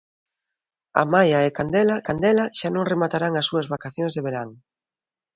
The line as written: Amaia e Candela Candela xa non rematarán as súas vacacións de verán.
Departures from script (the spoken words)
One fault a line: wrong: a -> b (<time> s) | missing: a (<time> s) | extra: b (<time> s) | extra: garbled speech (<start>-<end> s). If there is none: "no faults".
no faults